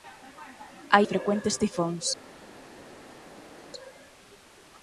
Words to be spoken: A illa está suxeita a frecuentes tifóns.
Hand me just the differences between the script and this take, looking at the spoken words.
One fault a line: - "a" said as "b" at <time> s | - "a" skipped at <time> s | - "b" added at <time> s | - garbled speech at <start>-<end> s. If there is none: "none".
- "illa está suxeita" skipped at 1.0 s